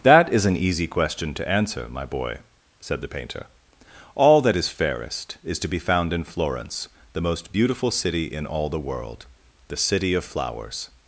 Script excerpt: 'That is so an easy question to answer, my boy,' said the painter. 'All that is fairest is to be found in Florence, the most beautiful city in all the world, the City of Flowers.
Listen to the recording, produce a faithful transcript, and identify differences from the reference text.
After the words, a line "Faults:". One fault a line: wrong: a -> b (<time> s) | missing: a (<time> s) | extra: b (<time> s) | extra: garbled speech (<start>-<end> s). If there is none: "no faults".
'That is an easy question to answer, my boy,' said the painter. 'All that is fairest is to be found in Florence, the most beautiful city in all the world, the City of Flowers.
Faults:
missing: so (0.5 s)